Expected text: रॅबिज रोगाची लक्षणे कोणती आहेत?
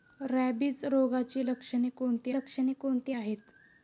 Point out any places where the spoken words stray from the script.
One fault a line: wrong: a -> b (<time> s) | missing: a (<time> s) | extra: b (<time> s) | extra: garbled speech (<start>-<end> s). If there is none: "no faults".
extra: लक्षणे कोणती (2.3 s)